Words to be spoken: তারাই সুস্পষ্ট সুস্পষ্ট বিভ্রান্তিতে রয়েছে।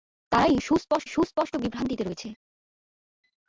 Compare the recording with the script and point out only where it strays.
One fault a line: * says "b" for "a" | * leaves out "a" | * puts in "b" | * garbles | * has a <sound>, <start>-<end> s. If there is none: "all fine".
all fine